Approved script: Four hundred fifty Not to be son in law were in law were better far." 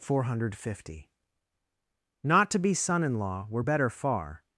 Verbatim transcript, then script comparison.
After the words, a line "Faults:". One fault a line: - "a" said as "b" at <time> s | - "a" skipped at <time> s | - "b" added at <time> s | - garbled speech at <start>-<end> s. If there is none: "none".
Four hundred fifty Not to be son in law were better far."
Faults:
- "in law were" skipped at 3.6 s